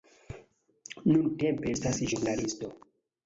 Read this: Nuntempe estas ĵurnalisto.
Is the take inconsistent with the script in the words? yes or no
no